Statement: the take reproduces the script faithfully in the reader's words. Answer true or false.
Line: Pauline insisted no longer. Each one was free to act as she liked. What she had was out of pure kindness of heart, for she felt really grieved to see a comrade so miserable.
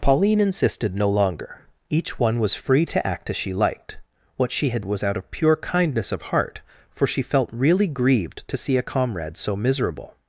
true